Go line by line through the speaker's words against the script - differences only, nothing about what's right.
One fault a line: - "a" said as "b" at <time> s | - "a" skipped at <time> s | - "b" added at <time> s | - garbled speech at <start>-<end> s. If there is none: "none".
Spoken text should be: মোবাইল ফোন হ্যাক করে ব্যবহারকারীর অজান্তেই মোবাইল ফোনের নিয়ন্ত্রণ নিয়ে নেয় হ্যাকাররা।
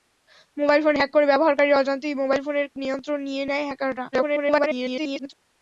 - garbled speech at 4.1-5.3 s